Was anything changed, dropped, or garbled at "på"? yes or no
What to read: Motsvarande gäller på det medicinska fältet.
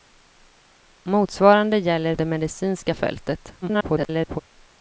yes